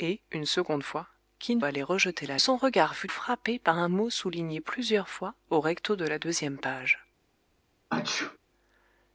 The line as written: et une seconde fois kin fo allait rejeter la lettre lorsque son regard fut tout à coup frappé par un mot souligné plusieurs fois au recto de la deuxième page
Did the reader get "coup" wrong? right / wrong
wrong